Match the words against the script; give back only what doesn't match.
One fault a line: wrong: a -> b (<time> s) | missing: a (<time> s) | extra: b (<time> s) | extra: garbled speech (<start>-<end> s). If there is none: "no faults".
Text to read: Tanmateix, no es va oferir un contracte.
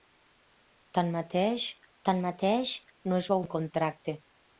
extra: tanmateix (2.1 s)
missing: oferir (3.4 s)